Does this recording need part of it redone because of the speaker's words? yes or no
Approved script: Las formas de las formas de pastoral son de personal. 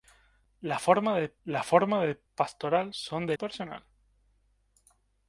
no